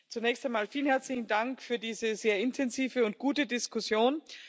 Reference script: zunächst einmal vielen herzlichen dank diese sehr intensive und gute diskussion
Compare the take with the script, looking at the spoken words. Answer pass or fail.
fail